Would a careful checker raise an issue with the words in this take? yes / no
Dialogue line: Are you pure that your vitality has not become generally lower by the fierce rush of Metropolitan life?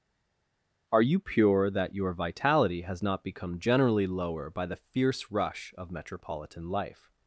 no